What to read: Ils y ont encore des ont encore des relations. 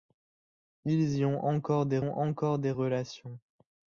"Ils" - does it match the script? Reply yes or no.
yes